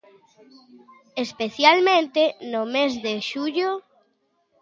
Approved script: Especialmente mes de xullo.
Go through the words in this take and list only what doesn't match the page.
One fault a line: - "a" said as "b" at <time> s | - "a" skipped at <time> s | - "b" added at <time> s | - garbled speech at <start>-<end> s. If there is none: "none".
- "no" added at 2.5 s